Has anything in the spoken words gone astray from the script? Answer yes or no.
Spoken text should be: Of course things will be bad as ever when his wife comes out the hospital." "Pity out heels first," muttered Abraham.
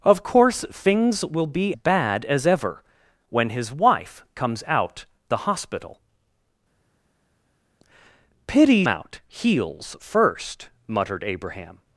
no